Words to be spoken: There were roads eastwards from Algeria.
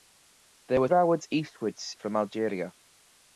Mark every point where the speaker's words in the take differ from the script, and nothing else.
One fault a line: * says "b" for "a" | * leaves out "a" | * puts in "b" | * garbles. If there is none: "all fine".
all fine